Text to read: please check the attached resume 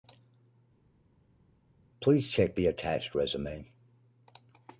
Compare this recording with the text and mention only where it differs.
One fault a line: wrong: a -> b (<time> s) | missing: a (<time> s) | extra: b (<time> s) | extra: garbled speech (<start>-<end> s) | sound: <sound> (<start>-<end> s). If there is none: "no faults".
no faults